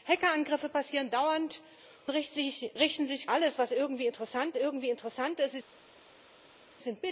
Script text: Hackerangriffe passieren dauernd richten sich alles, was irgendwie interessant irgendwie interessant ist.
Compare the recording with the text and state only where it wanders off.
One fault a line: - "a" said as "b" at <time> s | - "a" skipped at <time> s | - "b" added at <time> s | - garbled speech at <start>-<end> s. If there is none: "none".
none